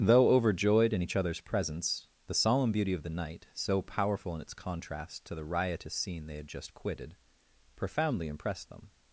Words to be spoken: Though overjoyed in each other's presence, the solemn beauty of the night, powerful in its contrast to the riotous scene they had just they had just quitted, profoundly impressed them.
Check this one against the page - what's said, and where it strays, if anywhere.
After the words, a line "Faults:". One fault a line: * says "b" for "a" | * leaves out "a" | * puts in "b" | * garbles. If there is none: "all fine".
Though overjoyed in each other's presence, the solemn beauty of the night, so powerful in its contrast to the riotous scene they had just quitted, profoundly impressed them.
Faults:
* puts in "so"
* leaves out "they had just"